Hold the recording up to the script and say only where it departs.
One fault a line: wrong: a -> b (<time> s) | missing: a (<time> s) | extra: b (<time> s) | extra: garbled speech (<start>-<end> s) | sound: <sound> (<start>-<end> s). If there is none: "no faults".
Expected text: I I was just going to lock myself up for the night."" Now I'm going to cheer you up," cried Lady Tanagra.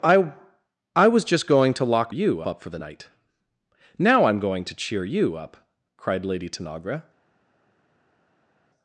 wrong: myself -> you (2.1 s)